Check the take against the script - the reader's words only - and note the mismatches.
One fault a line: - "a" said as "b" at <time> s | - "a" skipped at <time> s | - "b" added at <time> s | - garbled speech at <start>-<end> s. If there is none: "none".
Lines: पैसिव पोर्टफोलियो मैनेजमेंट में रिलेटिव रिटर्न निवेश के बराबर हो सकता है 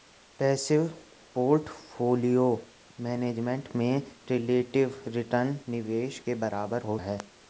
- "सकता" skipped at 7.0 s